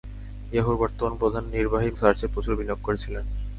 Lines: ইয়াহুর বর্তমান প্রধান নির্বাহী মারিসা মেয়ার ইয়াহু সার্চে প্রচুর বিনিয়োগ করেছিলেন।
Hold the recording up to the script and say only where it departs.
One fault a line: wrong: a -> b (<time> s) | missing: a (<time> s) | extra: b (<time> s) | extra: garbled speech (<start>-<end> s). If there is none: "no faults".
missing: মারিসা মেয়ার ইয়াহু (1.9 s)